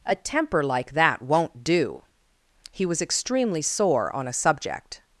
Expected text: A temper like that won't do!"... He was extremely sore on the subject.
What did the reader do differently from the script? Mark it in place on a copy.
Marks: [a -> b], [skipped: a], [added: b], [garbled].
A temper like that won't do!"... He was extremely sore on [the -> a] subject.